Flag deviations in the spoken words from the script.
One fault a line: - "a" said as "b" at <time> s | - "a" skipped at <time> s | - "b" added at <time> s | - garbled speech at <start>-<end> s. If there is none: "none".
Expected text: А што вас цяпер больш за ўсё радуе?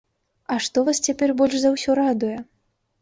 none